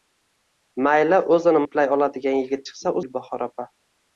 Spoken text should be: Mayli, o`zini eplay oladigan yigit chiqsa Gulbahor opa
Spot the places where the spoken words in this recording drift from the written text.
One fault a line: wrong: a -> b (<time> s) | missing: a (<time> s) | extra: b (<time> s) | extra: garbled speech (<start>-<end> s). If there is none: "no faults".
no faults